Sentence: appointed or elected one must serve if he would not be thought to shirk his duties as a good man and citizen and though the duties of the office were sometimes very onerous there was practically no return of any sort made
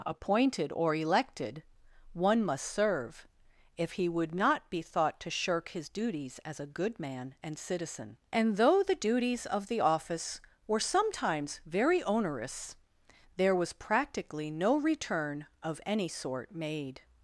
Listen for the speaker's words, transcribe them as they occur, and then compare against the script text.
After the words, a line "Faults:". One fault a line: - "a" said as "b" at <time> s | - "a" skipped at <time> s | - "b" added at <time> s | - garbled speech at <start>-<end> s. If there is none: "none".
appointed or elected one must serve if he would not be thought to shirk his duties as a good man and citizen and though the duties of the office were sometimes very onerous there was practically no return of any sort made
Faults:
none